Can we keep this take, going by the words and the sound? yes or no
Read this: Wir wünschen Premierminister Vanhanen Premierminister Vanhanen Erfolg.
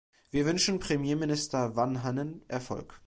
no